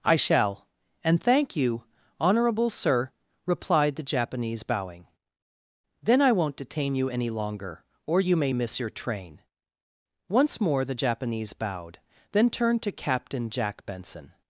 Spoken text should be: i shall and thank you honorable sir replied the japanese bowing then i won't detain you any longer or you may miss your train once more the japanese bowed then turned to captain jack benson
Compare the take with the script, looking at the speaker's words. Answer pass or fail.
pass